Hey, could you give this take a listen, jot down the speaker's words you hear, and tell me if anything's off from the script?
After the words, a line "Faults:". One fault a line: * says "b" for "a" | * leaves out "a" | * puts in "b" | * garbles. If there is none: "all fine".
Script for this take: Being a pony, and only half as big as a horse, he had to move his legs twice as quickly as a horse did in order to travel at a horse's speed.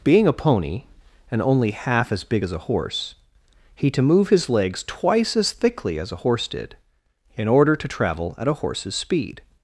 Being a pony, and only half as big as a horse, he to move his legs twice as thickly as a horse did in order to travel at a horse's speed.
Faults:
* leaves out "had"
* says "thickly" for "quickly"